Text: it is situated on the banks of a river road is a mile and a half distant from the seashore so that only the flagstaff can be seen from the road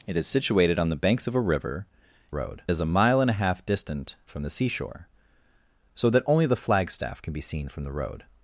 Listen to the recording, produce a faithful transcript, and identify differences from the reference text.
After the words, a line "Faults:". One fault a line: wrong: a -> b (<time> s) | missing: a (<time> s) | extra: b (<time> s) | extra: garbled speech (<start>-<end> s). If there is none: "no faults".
it is situated on the banks of a river road is a mile and a half distant from the seashore so that only the flagstaff can be seen from the road
Faults:
no faults